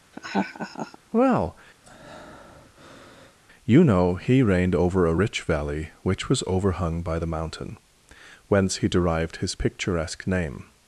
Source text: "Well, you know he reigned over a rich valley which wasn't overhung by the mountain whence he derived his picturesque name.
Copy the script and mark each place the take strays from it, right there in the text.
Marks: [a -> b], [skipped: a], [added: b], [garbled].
"Well, you know he reigned over a rich valley which [wasn't -> was] overhung by the mountain whence he derived his picturesque name.